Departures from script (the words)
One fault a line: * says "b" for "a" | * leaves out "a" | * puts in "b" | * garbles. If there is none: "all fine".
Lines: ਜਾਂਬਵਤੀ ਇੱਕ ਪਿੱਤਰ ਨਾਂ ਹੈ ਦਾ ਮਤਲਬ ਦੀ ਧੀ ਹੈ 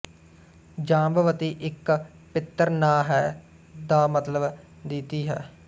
all fine